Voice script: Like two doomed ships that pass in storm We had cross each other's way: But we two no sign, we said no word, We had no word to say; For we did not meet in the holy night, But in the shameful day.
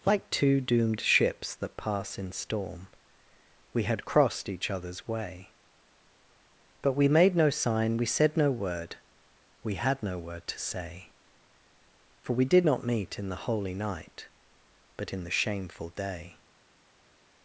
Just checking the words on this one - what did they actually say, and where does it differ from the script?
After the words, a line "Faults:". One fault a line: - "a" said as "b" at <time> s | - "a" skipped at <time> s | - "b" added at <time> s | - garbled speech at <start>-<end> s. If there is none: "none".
Like two doomed ships that pass in storm We had crossed each other's way: But we made no sign, we said no word, We had no word to say; For we did not meet in the holy night, But in the shameful day.
Faults:
- "cross" said as "crossed" at 4.0 s
- "two" said as "made" at 7.1 s